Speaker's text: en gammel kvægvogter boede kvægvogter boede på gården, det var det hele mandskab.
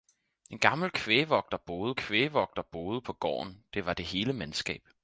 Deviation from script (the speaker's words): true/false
false